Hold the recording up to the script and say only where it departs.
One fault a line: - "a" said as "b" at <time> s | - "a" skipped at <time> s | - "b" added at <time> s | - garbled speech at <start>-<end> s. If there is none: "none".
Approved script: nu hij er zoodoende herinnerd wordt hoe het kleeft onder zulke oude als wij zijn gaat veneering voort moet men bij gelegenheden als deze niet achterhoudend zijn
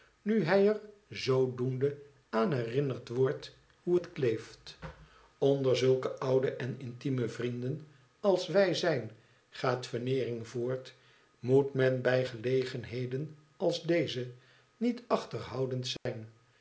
- "aan" added at 2.3 s
- "en intieme vrienden" added at 6.5 s